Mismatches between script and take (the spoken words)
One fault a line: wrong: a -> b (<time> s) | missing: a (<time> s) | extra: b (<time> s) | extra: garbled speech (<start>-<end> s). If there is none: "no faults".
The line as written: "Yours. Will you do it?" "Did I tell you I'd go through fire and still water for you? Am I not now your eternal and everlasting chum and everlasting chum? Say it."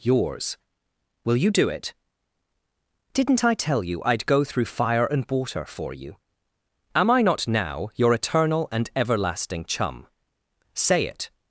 wrong: Did -> Didn't (3.1 s)
missing: still (5.2 s)
missing: and everlasting chum (10.1 s)